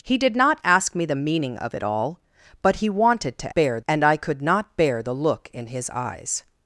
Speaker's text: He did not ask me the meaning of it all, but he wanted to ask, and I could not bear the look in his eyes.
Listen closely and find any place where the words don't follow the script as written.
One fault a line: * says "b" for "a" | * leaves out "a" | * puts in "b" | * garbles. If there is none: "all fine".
* says "bear" for "ask"